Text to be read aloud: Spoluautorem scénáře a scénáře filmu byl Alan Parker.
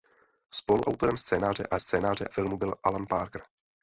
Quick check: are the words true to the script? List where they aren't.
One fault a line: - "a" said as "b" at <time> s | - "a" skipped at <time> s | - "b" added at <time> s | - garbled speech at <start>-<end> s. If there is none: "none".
none